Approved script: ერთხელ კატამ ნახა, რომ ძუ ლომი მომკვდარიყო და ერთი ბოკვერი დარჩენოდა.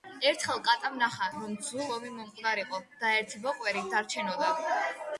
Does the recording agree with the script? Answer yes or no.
yes